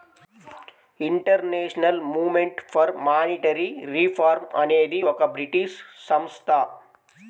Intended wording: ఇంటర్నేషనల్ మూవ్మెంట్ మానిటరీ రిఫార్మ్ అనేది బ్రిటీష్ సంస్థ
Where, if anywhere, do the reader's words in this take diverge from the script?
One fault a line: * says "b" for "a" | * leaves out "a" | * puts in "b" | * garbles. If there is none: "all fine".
* puts in "ఫర్"
* puts in "ఒక"